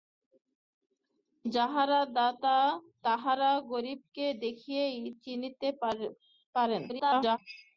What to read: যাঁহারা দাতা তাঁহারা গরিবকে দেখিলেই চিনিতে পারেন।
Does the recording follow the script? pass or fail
fail